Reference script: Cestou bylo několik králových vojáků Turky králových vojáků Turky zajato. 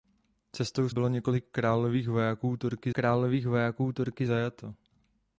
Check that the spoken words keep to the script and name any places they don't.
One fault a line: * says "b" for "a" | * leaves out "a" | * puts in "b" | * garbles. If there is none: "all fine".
all fine